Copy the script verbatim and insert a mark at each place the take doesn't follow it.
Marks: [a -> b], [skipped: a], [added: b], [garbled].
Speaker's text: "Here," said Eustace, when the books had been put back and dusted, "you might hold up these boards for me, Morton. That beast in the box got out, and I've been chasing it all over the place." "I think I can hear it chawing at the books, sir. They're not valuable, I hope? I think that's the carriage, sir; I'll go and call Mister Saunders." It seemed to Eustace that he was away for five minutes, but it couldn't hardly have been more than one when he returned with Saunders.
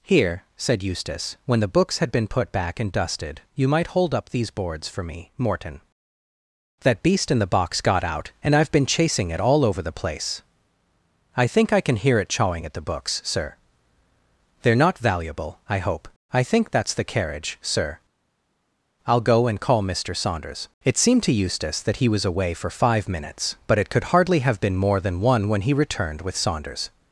"Here," said Eustace, when the books had been put back and dusted, "you might hold up these boards for me, Morton. That beast in the box got out, and I've been chasing it all over the place." "I think I can hear it chawing at the books, sir. They're not valuable, I hope? I think that's the carriage, sir; I'll go and call Mister Saunders." It seemed to Eustace that he was away for five minutes, but it [couldn't -> could] hardly have been more than one when he returned with Saunders.